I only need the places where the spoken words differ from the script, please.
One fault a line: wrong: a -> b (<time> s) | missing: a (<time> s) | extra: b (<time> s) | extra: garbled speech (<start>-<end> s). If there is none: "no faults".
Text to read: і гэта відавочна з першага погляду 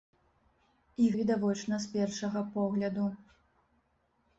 missing: гэта (1.1 s)